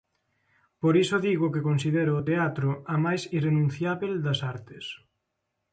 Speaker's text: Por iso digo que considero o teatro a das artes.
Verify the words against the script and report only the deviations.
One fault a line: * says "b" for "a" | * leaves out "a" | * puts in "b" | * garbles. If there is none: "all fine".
* puts in "máis irrenunciábel"